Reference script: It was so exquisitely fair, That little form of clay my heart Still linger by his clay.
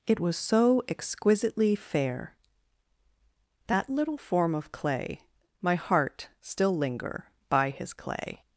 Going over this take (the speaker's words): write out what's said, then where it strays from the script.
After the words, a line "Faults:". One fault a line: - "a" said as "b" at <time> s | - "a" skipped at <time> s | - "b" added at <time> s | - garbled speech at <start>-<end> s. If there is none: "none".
It was so exquisitely fair, That little form of clay my heart Still linger by his clay.
Faults:
none